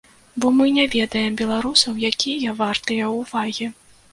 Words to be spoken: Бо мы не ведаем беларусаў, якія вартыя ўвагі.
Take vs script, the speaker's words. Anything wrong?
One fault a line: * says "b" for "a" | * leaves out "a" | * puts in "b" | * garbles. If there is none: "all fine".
all fine